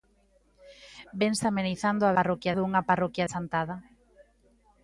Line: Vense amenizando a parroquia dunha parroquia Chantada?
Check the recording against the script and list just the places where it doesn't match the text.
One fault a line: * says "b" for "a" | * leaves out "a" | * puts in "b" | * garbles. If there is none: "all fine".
all fine